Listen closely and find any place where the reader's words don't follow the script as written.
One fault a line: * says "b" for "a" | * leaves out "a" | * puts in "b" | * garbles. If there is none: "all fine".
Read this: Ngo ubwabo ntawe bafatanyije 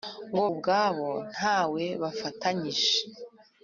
all fine